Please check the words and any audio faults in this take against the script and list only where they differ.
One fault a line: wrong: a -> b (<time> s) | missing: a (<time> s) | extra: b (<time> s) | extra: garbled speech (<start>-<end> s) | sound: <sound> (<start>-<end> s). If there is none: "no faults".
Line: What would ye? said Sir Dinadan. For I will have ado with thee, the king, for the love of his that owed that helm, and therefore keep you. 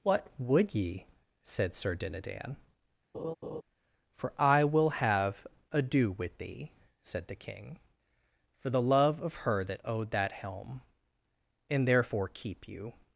sound: laugh (3.1-3.6 s)
extra: said (7.0 s)
wrong: his -> her (9.4 s)